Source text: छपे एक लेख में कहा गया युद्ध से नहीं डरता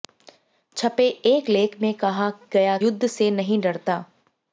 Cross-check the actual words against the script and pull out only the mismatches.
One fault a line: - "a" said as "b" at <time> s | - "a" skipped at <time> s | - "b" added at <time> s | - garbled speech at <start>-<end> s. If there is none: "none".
none